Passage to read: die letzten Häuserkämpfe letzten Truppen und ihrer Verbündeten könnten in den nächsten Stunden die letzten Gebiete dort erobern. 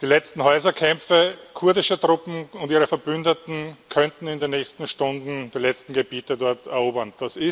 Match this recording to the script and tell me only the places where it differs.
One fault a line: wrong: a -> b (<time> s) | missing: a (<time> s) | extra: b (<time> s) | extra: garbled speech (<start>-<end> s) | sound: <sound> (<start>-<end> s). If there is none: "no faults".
wrong: letzten -> kurdischer (1.5 s)